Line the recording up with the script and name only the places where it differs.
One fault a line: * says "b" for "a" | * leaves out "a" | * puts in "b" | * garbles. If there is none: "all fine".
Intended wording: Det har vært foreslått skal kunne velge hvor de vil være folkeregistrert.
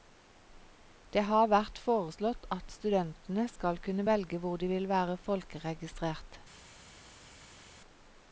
* puts in "at studentene"